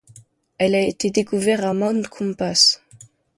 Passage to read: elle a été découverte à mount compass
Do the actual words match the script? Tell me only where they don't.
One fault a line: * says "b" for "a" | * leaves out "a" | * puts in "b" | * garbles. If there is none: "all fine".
all fine